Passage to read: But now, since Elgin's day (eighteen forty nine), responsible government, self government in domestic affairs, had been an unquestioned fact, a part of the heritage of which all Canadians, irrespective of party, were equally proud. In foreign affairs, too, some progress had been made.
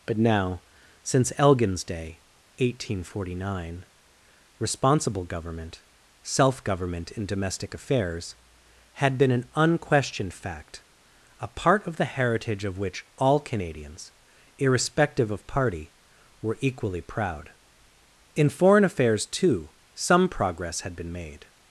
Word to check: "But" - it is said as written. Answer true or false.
true